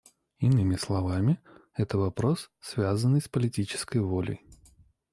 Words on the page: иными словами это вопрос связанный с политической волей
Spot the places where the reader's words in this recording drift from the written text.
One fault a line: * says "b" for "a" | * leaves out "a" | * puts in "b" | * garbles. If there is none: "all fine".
all fine